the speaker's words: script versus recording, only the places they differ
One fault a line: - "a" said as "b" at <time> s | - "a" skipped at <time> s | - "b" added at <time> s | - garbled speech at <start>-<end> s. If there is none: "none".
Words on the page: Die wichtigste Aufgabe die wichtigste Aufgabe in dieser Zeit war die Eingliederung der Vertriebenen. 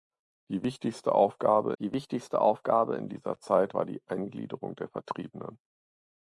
none